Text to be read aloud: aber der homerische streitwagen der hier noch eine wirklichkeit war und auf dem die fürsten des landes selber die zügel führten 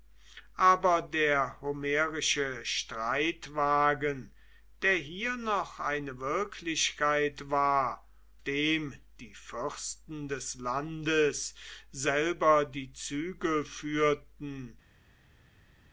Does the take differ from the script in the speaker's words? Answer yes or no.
yes